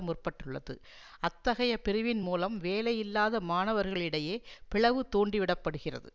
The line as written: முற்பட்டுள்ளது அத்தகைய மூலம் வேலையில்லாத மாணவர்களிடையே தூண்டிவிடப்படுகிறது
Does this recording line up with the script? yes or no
no